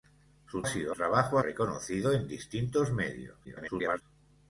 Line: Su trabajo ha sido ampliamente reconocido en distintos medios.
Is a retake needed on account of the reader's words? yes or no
yes